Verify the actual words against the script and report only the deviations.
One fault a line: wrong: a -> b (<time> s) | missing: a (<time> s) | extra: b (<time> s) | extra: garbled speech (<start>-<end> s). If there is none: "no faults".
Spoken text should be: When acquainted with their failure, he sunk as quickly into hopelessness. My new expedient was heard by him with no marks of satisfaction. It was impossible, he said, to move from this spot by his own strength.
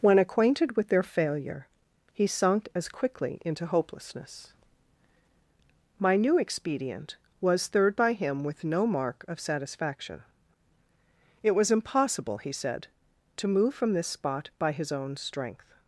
wrong: heard -> third (7.7 s)
wrong: marks -> mark (8.9 s)